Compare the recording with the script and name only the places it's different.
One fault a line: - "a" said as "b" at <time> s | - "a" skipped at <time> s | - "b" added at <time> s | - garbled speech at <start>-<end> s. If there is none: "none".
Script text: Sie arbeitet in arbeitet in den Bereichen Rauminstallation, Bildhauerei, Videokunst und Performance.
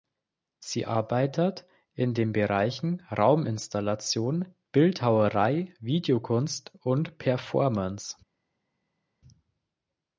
- "arbeitet in" skipped at 2.1 s